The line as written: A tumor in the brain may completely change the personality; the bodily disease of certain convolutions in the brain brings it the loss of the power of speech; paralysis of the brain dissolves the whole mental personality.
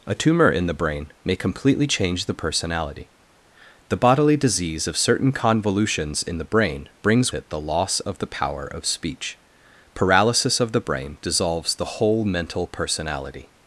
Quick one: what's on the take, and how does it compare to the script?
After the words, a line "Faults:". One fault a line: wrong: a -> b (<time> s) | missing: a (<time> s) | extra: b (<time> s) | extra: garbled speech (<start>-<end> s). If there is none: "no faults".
A tumor in the brain may completely change the personality; the bodily disease of certain convolutions in the brain brings it the loss of the power of speech; paralysis of the brain dissolves the whole mental personality.
Faults:
no faults